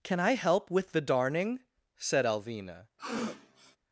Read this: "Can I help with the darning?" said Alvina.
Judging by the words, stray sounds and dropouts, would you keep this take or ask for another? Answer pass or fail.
fail